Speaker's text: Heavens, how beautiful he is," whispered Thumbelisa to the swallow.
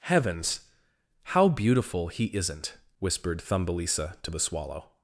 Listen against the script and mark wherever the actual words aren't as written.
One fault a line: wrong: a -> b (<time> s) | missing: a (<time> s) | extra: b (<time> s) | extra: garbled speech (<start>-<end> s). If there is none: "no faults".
wrong: is -> isn't (2.4 s)